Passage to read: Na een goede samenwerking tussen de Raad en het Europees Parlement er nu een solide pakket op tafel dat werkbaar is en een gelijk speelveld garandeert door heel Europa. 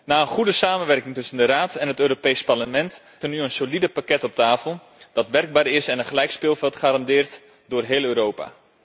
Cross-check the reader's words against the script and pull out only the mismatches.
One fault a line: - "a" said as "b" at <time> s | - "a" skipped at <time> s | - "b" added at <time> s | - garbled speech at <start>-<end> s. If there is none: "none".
none